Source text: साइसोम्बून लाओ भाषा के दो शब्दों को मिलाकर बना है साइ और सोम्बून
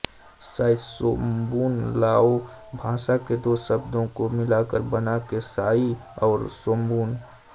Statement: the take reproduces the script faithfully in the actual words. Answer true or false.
true